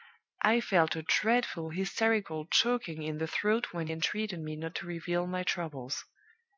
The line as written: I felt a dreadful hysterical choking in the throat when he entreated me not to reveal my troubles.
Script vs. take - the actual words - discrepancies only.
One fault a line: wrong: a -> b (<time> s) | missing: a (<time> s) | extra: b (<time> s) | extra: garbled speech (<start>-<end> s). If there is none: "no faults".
missing: he (3.9 s)